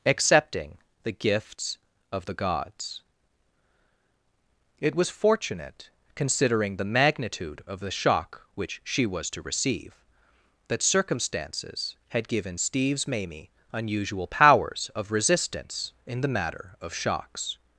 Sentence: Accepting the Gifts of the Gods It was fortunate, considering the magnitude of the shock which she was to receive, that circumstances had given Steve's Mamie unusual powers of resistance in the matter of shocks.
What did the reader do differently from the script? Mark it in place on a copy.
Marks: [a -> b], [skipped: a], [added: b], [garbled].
Accepting the Gifts of the Gods It was fortunate, considering the magnitude of the shock which she was to receive, that circumstances had given Steve's Mamie unusual powers of resistance in the matter of shocks.